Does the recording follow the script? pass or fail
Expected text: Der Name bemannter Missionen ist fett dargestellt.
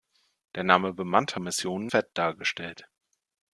fail